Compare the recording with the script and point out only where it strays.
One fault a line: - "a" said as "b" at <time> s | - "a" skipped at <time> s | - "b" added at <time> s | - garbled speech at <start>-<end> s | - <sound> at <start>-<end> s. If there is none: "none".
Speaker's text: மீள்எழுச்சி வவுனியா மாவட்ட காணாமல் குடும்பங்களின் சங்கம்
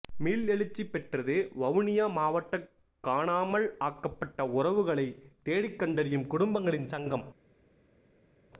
- "பெற்றது" added at 0.9 s
- "ஆக்கப்பட்ட உறவுகளை தேடிக்கண்டறியும்" added at 3.8 s